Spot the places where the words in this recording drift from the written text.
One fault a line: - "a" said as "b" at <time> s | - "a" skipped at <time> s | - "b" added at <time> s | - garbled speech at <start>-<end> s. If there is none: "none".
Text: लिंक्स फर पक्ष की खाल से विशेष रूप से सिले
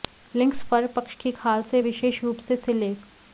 none